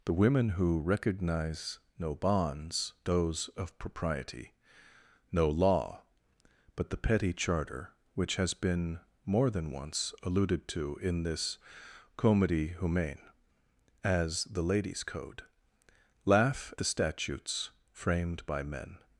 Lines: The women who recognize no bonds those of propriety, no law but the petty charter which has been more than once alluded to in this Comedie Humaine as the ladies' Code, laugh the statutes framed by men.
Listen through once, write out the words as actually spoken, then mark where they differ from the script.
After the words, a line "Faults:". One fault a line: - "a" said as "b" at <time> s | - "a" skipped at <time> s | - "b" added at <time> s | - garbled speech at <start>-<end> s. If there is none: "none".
The women who recognize no bonds those of propriety, no law but the petty charter which has been more than once alluded to in this Comedie Humaine as the ladies' Code, laugh the statutes framed by men.
Faults:
none